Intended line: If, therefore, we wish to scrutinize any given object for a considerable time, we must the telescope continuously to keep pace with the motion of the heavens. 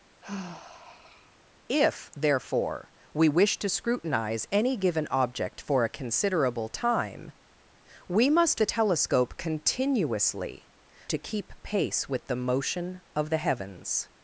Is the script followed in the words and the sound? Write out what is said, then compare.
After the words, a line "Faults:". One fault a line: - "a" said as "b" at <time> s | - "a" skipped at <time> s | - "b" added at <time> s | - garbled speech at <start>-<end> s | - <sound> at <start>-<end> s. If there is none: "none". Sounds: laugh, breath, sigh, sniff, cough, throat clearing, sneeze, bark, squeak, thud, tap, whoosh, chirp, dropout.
If, therefore, we wish to scrutinize any given object for a considerable time, we must the telescope continuously to keep pace with the motion of the heavens.
Faults:
- sigh at 0.2-1.4 s